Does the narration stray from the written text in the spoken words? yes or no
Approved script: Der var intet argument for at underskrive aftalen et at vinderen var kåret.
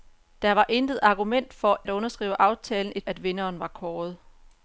no